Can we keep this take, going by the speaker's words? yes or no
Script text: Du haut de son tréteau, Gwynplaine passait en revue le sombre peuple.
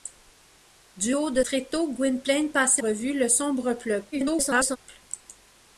no